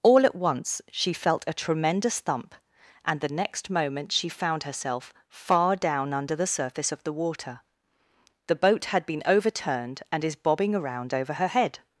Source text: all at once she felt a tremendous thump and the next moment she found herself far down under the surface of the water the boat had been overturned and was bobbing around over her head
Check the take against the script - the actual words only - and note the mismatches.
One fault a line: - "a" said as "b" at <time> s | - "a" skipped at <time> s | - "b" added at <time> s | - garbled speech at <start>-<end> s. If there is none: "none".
- "was" said as "is" at 10.2 s